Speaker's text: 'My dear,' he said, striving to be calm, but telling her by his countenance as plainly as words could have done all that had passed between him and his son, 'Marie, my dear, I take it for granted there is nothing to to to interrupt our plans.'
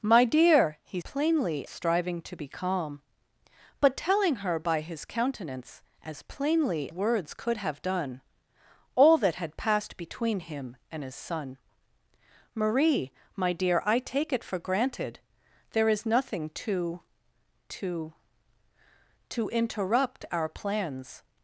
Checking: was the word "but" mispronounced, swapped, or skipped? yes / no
no